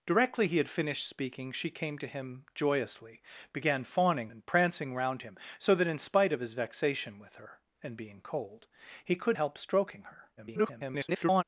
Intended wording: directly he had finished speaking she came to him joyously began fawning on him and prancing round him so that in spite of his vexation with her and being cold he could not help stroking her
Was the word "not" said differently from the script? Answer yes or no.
yes